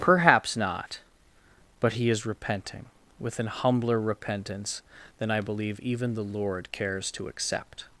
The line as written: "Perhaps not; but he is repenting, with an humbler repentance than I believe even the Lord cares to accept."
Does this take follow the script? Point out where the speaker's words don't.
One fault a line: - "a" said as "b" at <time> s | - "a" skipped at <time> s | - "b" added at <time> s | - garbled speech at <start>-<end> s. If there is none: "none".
none